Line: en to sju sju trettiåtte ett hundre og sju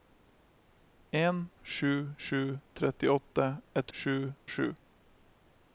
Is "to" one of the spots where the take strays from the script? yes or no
yes